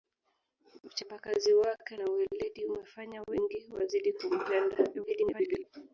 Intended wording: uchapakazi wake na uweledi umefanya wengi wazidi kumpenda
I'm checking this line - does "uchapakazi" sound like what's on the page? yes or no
yes